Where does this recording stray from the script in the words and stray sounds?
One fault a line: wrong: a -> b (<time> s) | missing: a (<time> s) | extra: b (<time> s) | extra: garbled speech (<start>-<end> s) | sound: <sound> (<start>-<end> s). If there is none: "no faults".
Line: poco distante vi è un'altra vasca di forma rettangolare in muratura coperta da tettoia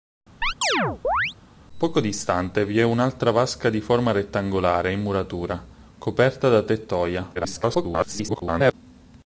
sound: chirp (0.4-1.3 s)
extra: garbled speech (7.3-8.7 s)